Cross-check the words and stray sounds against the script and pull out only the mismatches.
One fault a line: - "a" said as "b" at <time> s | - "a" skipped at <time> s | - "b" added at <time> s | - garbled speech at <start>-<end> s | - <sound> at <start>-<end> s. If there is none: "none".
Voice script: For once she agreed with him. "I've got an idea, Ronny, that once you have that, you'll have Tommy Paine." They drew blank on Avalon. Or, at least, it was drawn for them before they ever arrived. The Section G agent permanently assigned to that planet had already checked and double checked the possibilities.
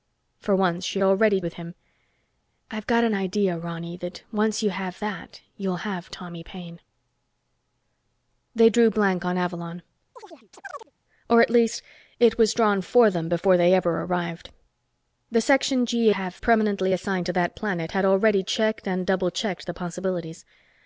- "agreed" said as "already" at 1.0 s
- chirp at 10.2-10.9 s
- "agent" said as "have" at 16.1 s